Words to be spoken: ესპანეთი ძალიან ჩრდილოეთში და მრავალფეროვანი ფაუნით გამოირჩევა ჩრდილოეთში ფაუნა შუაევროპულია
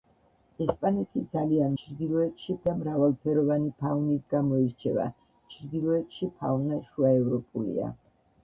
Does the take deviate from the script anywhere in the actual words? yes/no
no